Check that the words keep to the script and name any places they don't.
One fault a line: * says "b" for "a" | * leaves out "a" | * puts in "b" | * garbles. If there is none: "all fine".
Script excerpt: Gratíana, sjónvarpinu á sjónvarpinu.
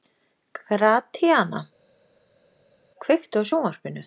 * says "kveiktu" for "sjónvarpinu"